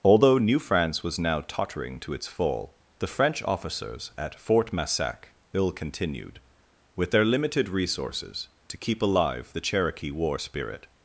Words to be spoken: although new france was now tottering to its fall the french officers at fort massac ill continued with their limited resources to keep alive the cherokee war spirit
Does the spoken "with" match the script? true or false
true